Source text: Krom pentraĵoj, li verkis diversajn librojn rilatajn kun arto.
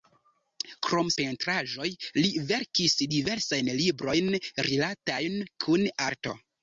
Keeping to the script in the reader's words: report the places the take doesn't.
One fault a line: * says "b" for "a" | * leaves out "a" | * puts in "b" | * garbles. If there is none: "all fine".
all fine